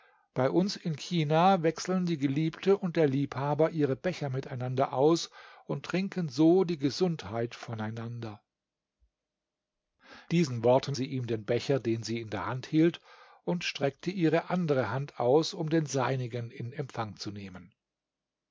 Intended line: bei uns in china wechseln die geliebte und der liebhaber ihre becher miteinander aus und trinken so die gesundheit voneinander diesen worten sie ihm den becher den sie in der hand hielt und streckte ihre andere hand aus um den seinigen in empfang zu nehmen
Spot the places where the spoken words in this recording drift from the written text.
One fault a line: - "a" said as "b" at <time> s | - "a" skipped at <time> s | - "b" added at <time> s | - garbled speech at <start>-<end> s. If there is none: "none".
none